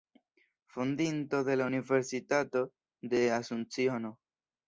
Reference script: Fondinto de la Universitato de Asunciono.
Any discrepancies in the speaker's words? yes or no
no